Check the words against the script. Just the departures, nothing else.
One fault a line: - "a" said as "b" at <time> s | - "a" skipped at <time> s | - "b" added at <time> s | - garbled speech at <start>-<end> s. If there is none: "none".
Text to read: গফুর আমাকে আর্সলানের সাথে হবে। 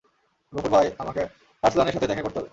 - "ভাই" added at 0.7 s
- "দেখা করতে" added at 2.1 s